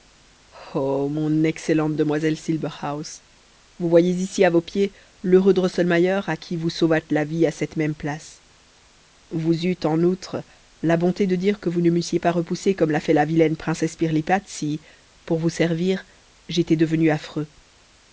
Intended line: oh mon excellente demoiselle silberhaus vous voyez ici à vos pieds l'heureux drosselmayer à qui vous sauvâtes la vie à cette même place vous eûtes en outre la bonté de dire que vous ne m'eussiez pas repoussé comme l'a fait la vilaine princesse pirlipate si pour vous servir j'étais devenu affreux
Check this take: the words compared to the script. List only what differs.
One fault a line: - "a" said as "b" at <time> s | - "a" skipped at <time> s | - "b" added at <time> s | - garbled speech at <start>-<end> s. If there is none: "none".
none